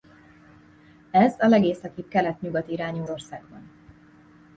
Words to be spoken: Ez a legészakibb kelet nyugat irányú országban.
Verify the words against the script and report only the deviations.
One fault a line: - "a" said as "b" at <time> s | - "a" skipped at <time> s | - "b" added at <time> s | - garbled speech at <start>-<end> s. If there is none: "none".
none